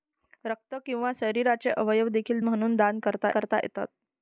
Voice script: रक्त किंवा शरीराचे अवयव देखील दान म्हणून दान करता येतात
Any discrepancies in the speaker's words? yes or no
yes